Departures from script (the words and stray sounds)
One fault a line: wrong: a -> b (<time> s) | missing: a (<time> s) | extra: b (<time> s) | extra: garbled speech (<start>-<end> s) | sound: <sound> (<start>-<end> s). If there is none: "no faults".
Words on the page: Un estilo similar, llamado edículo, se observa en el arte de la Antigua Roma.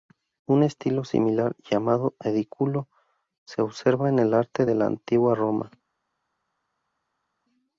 no faults